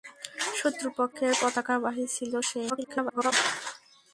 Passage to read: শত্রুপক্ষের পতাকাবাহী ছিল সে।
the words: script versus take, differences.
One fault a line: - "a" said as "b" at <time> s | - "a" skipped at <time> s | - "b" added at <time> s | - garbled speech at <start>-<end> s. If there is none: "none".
- garbled speech at 2.7-3.3 s